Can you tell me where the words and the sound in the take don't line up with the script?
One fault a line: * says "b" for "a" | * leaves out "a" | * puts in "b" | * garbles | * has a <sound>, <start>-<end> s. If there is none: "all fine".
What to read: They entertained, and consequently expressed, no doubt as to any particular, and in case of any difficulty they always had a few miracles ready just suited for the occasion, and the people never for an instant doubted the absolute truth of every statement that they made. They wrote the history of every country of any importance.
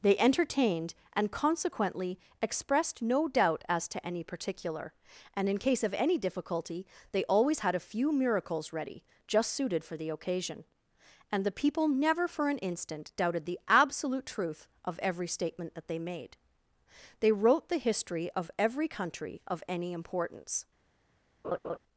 * has a laugh, 21.4-21.8 s